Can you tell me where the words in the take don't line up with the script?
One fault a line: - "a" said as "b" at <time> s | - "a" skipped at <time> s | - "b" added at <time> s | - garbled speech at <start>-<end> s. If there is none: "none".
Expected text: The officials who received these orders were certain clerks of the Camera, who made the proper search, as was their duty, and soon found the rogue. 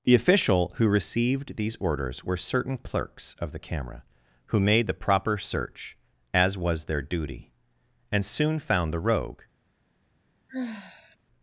- "officials" said as "official" at 0.1 s